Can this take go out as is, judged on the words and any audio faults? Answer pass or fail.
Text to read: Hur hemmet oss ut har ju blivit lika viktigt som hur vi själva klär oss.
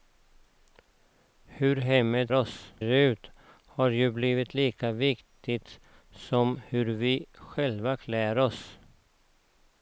pass